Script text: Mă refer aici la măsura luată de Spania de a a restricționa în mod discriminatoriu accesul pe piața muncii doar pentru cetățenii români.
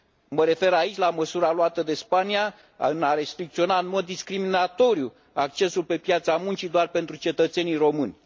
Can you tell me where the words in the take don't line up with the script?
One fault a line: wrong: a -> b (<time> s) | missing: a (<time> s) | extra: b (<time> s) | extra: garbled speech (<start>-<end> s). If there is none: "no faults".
missing: a (3.1 s)